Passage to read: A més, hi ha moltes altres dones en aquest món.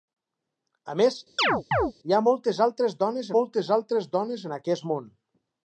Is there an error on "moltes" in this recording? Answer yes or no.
no